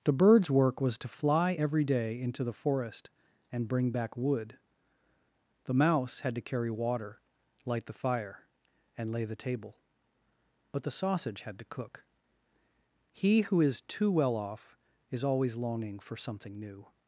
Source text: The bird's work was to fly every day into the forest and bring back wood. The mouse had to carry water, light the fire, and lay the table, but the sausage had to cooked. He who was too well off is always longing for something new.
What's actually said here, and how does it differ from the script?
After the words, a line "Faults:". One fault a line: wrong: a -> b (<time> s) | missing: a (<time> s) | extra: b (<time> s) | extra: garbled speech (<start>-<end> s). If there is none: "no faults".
The bird's work was to fly every day into the forest and bring back wood. The mouse had to carry water, light the fire, and lay the table, but the sausage had to cook. He who is too well off is always longing for something new.
Faults:
wrong: cooked -> cook (11.6 s)
wrong: was -> is (13.6 s)